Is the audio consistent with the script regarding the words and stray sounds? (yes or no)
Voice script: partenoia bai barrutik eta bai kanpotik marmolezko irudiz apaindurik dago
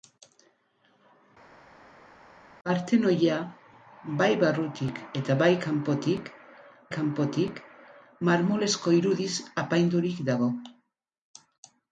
no